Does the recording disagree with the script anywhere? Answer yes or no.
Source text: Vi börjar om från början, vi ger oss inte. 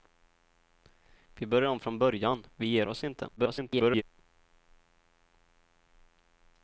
yes